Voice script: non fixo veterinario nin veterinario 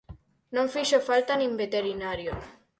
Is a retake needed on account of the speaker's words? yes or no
yes